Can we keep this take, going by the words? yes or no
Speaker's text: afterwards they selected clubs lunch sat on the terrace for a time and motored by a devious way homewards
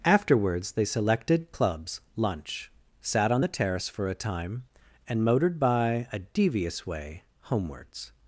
yes